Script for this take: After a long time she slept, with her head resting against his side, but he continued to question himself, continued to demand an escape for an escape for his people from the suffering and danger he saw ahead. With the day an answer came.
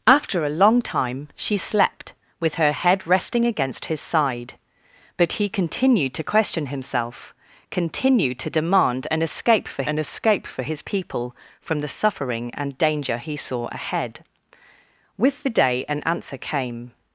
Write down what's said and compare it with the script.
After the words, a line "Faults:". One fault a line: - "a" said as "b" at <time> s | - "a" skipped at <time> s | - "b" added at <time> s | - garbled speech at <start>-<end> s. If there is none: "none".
After a long time she slept, with her head resting against his side, but he continued to question himself, continued to demand an escape for an escape for his people from the suffering and danger he saw ahead. With the day an answer came.
Faults:
none